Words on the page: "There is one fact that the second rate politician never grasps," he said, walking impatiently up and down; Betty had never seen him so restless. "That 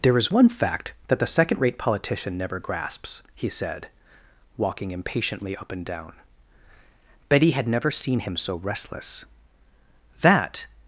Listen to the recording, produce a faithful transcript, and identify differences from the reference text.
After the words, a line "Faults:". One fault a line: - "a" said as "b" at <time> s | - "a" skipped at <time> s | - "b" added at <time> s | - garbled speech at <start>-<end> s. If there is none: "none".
"There is one fact that the second rate politician never grasps," he said, walking impatiently up and down; Betty had never seen him so restless. "That
Faults:
none